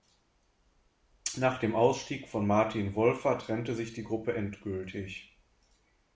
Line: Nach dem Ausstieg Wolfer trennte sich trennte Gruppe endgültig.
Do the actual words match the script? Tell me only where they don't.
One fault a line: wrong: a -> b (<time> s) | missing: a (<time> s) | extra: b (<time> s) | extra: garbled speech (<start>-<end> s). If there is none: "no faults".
extra: von Martin (2.3 s)
wrong: trennte -> die (3.9 s)